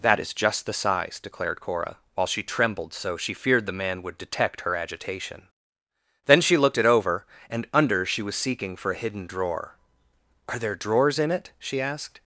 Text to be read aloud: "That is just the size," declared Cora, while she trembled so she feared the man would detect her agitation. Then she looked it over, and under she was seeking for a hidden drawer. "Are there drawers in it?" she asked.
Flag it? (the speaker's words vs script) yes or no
no